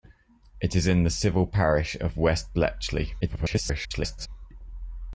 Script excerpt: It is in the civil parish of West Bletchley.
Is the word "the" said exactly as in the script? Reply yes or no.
yes